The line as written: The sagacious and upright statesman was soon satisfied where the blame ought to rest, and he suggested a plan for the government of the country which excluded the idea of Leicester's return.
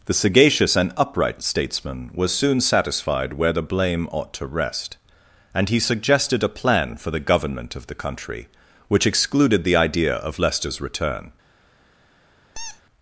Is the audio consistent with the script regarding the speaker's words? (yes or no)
yes